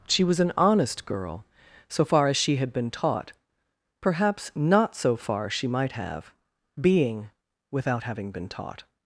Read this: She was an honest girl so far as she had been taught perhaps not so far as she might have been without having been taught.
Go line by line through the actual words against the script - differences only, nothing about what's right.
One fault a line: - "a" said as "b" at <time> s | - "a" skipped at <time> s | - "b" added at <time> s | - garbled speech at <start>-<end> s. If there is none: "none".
- "as" skipped at 5.5 s
- "been" said as "being" at 6.8 s